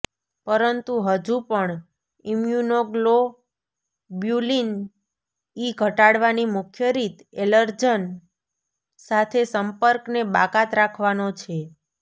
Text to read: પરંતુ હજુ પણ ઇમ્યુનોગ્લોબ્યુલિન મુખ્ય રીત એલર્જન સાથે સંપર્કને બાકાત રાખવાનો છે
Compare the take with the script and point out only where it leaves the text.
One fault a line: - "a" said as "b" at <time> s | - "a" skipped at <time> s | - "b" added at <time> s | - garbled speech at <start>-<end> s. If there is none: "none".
- "ઇ ઘટાડવાની" added at 5.6 s